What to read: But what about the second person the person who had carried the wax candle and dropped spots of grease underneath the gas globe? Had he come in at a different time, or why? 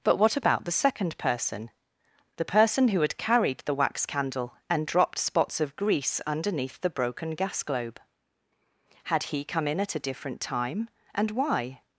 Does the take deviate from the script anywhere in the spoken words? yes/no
yes